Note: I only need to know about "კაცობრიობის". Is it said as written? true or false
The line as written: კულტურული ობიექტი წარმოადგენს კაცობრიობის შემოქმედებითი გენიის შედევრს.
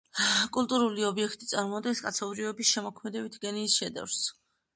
true